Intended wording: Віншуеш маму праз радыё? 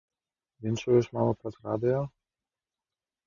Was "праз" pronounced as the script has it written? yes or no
yes